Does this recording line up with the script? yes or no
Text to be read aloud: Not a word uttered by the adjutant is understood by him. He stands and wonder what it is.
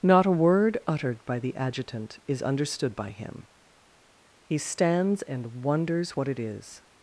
no